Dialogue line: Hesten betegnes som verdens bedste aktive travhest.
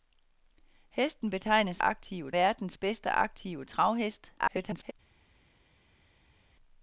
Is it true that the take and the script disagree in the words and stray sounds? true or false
true